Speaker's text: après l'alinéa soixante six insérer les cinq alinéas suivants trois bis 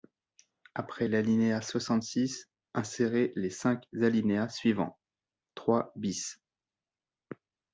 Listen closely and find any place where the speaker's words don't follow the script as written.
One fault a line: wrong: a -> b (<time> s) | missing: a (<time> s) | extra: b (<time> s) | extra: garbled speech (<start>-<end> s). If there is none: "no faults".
no faults